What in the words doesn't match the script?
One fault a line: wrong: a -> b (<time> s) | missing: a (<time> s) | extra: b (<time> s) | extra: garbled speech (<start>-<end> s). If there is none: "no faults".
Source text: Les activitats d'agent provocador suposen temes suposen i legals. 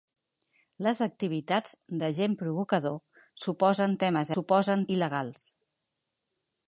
no faults